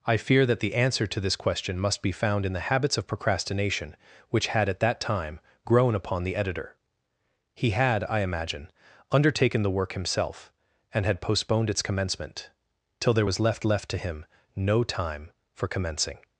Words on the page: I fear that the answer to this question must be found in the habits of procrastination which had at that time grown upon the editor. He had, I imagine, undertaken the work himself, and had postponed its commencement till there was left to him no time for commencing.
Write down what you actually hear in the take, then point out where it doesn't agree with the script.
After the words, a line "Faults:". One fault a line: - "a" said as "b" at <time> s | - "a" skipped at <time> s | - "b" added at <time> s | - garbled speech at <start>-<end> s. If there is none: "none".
I fear that the answer to this question must be found in the habits of procrastination which had at that time grown upon the editor. He had, I imagine, undertaken the work himself, and had postponed its commencement till there was left left to him no time for commencing.
Faults:
- "left" added at 13.7 s